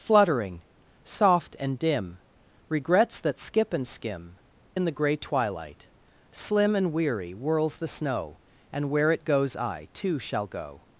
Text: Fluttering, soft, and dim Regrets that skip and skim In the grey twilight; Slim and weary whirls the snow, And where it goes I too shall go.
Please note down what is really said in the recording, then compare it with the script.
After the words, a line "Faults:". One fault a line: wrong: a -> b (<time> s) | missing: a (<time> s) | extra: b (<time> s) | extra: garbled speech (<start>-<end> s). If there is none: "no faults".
Fluttering, soft, and dim Regrets that skip and skim In the grey twilight; Slim and weary whirls the snow, And where it goes I too shall go.
Faults:
no faults